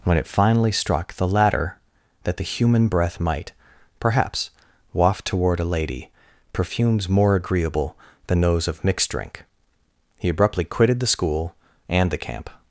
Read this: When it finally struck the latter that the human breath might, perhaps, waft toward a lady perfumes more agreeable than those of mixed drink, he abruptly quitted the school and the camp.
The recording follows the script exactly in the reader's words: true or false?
true